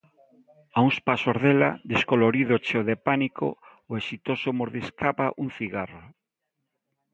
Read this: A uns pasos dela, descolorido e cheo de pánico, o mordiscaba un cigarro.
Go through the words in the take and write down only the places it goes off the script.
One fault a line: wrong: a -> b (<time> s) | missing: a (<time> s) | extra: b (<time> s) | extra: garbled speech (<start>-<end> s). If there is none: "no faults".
extra: exitoso (4.0 s)